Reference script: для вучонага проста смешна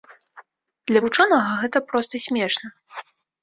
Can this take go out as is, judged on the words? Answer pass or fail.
fail